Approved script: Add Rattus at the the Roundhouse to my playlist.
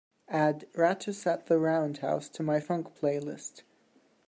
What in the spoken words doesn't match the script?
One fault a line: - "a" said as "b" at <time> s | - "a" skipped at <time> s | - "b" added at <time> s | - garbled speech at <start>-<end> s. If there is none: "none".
- "the" skipped at 1.6 s
- "funk" added at 2.6 s